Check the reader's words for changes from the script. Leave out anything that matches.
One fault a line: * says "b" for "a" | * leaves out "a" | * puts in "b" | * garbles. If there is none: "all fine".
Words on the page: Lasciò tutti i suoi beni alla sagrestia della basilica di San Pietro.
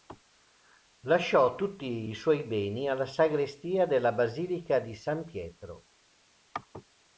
all fine